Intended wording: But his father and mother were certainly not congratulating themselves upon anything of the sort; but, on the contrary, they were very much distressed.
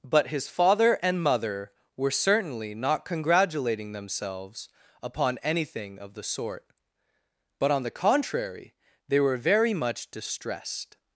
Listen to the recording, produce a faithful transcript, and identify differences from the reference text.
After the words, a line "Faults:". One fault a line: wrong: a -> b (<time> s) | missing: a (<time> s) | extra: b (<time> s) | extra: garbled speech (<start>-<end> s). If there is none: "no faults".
But his father and mother were certainly not congratulating themselves upon anything of the sort; but, on the contrary, they were very much distressed.
Faults:
no faults